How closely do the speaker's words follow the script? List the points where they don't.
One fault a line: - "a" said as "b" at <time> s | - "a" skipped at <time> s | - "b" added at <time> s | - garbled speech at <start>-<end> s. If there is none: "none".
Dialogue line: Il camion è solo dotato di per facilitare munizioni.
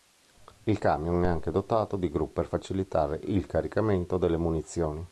- "solo" said as "anche" at 1.3 s
- "gru" added at 2.1 s
- "il caricamento delle" added at 3.2 s